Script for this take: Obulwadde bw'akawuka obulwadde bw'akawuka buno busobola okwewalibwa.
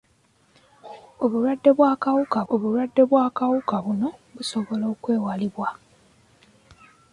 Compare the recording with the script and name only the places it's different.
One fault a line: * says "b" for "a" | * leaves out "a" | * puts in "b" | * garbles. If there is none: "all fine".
all fine